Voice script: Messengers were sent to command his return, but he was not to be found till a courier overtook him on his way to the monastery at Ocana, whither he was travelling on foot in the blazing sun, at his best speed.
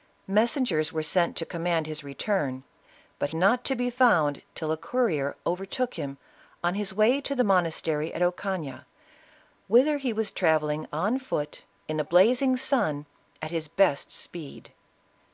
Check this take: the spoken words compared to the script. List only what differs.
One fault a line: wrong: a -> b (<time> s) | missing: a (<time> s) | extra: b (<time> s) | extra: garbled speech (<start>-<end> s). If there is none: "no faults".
missing: he was (3.3 s)